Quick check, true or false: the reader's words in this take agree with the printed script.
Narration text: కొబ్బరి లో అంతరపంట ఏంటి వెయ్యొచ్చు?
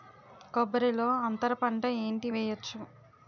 true